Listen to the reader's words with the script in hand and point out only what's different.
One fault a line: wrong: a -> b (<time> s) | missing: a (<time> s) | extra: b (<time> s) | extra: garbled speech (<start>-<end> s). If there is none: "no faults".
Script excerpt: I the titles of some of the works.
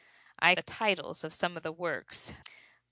no faults